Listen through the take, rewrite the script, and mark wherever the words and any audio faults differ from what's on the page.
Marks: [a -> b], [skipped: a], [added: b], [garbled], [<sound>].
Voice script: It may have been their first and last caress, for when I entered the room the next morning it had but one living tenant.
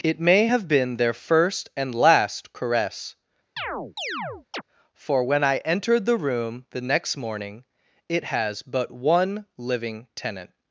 It may have been their first and last caress, [chirp] for when I entered the room the next morning it [had -> has] but one living tenant.